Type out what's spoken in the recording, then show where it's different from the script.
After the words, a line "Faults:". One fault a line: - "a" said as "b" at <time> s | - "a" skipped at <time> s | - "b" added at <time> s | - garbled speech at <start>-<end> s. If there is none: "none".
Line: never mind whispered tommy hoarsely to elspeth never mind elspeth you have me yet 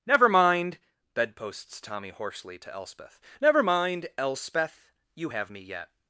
never mind bedposts tommy hoarsely to elspeth never mind elspeth you have me yet
Faults:
- "whispered" said as "bedposts" at 1.1 s